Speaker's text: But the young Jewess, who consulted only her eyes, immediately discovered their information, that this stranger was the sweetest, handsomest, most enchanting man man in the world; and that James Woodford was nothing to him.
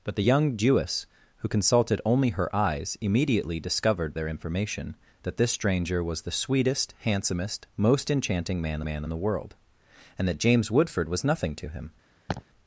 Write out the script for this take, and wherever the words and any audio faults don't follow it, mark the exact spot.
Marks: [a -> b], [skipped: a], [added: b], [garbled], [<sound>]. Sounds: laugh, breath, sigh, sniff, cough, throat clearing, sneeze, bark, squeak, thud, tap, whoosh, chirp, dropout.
But the young Jewess, who consulted only her eyes, immediately discovered their information, that this stranger was the sweetest, handsomest, most enchanting man man in the world; and that James Woodford was nothing to him. [laugh]